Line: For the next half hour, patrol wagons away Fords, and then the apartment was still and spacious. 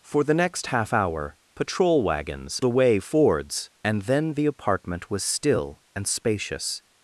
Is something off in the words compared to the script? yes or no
no